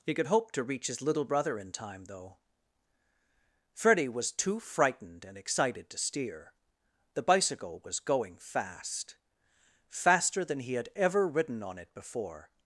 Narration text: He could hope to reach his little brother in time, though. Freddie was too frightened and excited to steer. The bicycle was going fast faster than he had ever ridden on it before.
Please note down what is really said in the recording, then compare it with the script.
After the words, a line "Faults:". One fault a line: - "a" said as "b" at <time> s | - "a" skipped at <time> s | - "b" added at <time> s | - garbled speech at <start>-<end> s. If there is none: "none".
He could hope to reach his little brother in time, though. Freddie was too frightened and excited to steer. The bicycle was going fast faster than he had ever ridden on it before.
Faults:
none